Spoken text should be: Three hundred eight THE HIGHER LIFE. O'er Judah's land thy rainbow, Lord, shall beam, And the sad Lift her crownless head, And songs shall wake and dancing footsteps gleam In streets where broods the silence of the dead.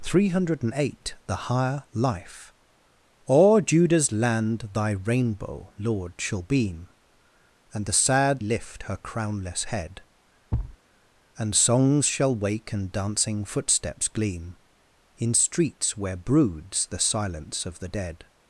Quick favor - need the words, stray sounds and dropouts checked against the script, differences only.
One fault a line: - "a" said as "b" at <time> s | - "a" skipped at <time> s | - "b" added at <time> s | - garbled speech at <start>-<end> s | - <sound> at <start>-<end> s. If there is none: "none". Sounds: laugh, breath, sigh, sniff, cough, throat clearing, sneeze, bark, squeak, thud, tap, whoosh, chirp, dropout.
- thud at 10.5-10.8 s